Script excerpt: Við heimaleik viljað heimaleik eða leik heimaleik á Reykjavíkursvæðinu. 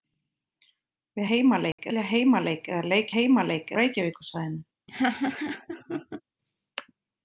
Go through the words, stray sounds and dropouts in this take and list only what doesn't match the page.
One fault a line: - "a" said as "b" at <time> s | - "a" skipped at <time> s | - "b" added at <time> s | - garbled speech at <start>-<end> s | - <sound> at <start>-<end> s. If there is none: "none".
- dropout at 1.7-1.8 s
- laugh at 4.9-6.2 s